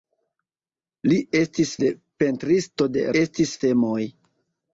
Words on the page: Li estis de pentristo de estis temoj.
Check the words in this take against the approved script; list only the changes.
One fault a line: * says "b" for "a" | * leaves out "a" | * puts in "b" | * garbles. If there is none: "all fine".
all fine